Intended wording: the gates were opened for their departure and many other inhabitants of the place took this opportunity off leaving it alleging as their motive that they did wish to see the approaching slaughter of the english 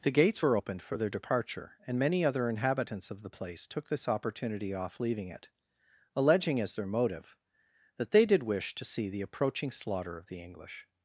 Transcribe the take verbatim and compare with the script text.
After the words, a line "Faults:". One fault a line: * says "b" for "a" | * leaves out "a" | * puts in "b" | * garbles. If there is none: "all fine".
the gates were opened for their departure and many other inhabitants of the place took this opportunity off leaving it alleging as their motive that they did wish to see the approaching slaughter of the english
Faults:
all fine